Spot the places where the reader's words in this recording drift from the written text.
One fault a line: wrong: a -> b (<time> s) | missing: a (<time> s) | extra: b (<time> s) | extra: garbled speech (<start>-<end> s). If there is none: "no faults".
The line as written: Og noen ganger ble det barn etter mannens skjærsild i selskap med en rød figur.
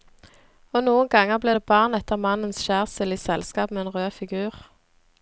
no faults